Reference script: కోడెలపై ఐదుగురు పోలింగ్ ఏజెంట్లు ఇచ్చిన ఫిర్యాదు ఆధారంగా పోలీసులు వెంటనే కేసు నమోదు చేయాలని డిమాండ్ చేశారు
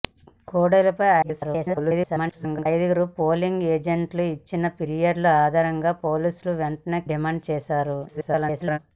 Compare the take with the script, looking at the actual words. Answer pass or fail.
fail